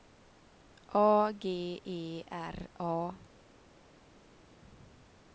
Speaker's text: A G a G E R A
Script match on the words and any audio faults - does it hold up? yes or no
no